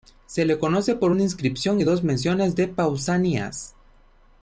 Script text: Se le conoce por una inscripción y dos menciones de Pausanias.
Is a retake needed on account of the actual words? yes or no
no